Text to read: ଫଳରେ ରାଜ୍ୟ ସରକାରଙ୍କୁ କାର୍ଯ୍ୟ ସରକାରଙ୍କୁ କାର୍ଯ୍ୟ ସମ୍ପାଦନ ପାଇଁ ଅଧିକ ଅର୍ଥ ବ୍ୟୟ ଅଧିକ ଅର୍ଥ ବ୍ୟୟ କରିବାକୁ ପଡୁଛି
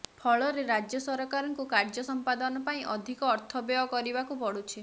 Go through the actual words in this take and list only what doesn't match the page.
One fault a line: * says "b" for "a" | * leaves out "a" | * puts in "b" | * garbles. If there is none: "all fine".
* leaves out "ସରକାରଙ୍କୁ କାର୍ଯ୍ୟ"
* leaves out "ଅଧିକ ଅର୍ଥ ବ୍ୟୟ"